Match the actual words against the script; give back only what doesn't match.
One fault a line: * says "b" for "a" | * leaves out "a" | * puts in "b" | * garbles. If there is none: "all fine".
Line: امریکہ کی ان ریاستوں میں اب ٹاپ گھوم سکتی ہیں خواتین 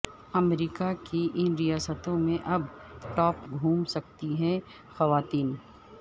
all fine